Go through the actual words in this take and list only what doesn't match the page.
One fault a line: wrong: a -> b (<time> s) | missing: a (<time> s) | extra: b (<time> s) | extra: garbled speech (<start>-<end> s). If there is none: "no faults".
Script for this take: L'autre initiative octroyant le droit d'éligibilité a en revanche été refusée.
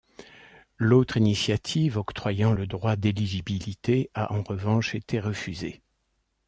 no faults